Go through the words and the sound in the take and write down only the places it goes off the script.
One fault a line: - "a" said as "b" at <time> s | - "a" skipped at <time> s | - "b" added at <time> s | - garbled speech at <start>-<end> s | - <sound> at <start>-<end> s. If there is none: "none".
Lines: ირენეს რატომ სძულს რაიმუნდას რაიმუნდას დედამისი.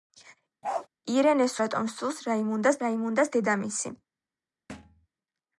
- bark at 0.6-0.9 s
- thud at 4.7-5.1 s